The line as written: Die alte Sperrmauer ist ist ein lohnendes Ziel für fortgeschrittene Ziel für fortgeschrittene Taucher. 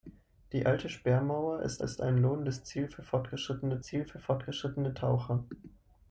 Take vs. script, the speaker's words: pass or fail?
pass